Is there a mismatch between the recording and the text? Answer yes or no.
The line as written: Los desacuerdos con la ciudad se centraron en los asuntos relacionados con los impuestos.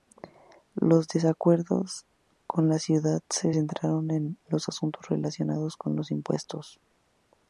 no